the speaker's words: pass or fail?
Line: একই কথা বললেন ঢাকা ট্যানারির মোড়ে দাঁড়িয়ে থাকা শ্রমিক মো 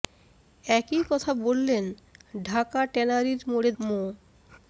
fail